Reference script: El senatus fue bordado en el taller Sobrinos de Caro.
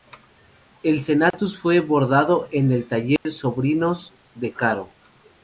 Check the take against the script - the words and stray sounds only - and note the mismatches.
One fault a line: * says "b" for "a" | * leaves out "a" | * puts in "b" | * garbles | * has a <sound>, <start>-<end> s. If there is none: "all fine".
* has a dropout, 1.3-1.3 s
* has a dropout, 3.2-3.3 s